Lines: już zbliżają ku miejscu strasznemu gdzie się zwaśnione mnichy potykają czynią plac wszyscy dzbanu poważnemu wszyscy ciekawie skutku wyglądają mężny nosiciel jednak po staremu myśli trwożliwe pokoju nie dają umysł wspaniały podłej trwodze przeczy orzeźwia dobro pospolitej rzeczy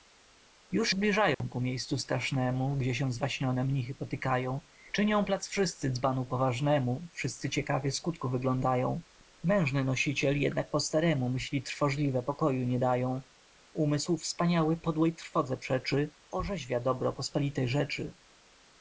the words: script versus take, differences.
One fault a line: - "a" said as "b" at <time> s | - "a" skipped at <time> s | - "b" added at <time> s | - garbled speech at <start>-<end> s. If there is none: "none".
none